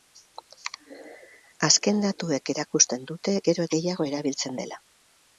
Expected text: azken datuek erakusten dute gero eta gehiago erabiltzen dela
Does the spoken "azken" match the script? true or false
true